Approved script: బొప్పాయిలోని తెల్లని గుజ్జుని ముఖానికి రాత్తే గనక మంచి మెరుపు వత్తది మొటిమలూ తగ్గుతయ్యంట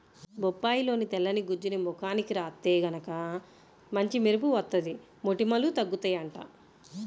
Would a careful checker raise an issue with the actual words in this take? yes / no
no